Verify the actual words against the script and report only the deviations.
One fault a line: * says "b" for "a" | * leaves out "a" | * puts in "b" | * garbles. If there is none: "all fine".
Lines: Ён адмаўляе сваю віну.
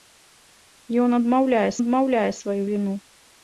* puts in "адмаўляе"